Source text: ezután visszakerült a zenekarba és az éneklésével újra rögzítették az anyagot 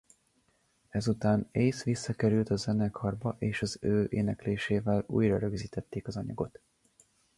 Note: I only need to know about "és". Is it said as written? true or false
true